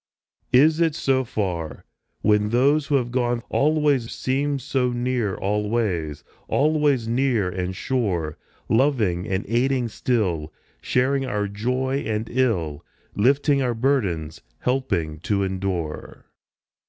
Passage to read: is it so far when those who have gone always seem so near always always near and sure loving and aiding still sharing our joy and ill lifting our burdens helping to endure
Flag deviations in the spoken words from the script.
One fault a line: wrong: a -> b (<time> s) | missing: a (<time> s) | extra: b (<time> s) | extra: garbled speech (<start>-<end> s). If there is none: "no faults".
no faults